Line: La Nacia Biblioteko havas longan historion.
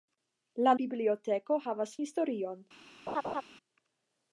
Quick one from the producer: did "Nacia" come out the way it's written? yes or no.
no